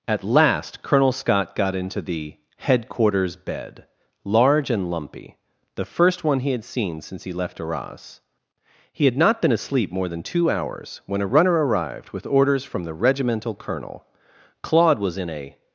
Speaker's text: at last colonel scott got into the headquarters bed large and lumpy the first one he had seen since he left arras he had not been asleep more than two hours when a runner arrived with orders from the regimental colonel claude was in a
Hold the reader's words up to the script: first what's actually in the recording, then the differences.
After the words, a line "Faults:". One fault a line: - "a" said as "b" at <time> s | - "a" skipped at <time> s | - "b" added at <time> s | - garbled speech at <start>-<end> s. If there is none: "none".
at last colonel scott got into the headquarters bed large and lumpy the first one he had seen since he left arras he had not been asleep more than two hours when a runner arrived with orders from the regimental colonel claude was in a
Faults:
none